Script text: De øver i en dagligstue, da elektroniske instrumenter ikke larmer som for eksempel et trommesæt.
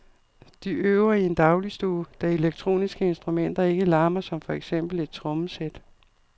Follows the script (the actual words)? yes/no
yes